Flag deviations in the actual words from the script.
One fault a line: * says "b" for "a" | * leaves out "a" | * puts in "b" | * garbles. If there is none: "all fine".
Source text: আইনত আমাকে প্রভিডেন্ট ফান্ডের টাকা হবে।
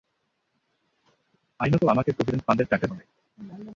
all fine